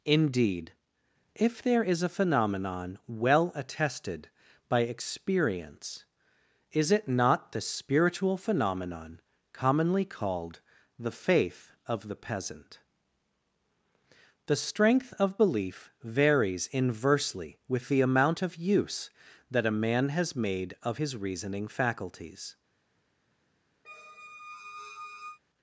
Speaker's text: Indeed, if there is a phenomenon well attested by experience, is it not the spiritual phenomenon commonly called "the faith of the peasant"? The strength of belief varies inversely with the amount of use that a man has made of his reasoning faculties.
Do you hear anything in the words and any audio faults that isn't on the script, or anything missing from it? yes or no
yes